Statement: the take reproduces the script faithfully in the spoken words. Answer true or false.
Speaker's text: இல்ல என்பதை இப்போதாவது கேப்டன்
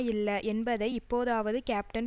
true